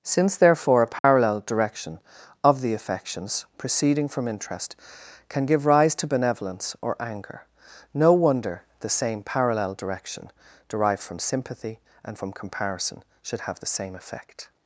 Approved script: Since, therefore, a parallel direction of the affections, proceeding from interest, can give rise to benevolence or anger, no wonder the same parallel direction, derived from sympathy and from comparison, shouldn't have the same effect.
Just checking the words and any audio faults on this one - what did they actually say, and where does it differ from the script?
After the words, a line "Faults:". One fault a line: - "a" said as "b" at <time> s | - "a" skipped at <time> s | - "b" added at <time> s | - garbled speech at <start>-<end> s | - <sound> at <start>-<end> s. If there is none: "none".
Since, therefore, a parallel direction of the affections, proceeding from interest, can give rise to benevolence or anger, no wonder the same parallel direction, derived from sympathy and from comparison, should have the same effect.
Faults:
- dropout at 1.0-1.0 s
- "shouldn't" said as "should" at 13.2 s